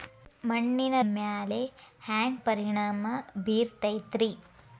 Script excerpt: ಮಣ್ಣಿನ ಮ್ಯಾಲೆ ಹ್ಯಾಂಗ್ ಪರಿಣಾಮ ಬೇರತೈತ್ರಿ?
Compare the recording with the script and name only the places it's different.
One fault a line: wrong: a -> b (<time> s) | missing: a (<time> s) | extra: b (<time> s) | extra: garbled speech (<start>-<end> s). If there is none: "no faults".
no faults